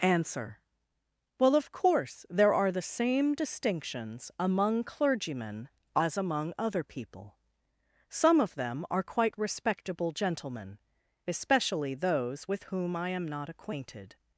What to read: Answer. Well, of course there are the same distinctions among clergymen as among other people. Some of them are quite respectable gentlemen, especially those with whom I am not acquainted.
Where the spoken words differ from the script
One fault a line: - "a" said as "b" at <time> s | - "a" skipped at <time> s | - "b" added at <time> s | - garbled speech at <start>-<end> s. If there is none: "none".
none